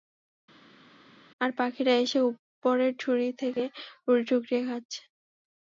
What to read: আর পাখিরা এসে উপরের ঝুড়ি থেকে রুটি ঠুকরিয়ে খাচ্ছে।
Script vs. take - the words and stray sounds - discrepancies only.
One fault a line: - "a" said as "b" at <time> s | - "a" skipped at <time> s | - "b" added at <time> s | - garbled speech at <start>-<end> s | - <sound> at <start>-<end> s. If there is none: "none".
none